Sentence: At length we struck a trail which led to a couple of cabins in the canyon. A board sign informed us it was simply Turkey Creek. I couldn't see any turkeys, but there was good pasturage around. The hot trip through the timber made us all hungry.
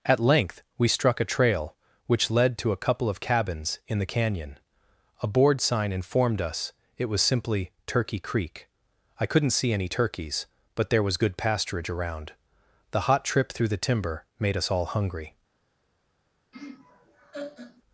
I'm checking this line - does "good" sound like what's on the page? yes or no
yes